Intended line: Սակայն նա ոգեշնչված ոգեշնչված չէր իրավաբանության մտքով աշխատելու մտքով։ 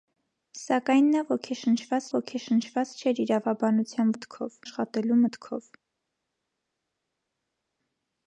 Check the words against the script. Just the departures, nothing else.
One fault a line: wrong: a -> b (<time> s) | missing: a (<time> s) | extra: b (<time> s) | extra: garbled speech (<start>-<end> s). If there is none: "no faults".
no faults